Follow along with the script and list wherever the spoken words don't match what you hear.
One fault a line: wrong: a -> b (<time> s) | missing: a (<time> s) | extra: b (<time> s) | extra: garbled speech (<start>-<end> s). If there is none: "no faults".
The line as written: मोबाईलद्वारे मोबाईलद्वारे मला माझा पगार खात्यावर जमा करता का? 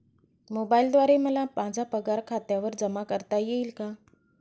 missing: मोबाईलद्वारे (1.2 s)
extra: येईल (3.4 s)